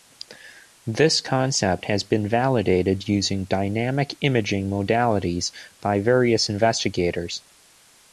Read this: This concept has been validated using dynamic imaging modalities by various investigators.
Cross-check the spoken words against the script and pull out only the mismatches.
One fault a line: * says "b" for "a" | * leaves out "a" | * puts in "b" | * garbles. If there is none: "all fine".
all fine